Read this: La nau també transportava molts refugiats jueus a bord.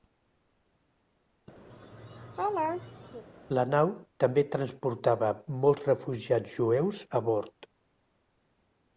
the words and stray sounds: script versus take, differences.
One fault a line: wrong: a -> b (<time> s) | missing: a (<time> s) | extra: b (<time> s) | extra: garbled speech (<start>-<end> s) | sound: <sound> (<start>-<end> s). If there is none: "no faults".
sound: laugh (1.7-3.2 s)